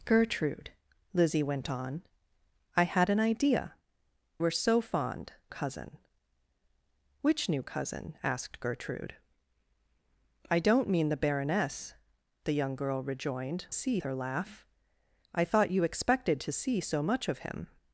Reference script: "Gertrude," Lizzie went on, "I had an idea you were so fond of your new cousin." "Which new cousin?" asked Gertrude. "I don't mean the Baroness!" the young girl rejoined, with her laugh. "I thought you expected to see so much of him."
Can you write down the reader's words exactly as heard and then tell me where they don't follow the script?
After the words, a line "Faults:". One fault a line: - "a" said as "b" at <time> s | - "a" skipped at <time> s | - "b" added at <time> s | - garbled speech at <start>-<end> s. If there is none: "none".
"Gertrude," Lizzie went on, "I had an idea were so fond cousin." "Which new cousin?" asked Gertrude. "I don't mean the Baroness!" the young girl rejoined, see her laugh. "I thought you expected to see so much of him."
Faults:
- "you" skipped at 3.8 s
- "of your new" skipped at 5.3 s
- "with" said as "see" at 13.7 s